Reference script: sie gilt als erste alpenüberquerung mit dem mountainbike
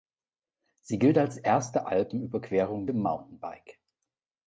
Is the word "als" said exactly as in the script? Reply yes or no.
yes